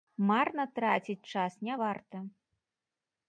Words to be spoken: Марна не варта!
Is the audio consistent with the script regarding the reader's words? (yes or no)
no